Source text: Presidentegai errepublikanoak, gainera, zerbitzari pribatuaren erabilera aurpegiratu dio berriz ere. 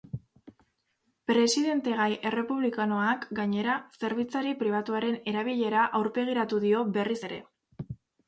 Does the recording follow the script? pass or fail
pass